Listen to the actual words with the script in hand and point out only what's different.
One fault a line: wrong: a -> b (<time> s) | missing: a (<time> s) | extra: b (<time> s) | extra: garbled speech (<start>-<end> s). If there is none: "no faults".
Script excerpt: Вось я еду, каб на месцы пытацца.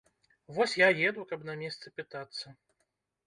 no faults